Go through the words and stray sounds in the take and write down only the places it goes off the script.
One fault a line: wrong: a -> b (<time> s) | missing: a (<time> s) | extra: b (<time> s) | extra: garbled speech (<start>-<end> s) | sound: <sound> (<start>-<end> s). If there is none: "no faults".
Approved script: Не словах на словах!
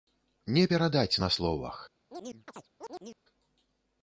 wrong: словах -> перадаць (0.7 s)
sound: chirp (2.1-3.2 s)